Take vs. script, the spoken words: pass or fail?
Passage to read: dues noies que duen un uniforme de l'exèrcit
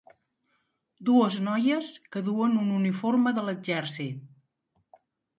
pass